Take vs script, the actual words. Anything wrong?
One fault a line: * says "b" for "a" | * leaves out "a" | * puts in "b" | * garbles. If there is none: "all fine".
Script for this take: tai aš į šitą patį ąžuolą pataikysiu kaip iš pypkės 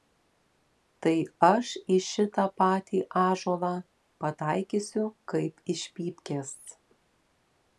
all fine